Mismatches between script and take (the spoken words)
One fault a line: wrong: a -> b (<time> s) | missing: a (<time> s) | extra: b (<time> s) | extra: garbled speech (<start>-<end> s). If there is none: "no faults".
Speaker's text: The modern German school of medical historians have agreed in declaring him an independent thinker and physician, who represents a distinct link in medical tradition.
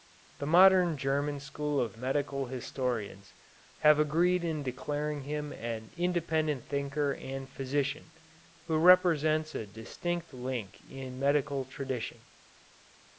no faults